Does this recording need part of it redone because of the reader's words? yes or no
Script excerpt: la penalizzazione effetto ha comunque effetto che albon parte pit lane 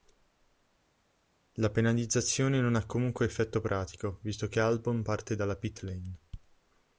yes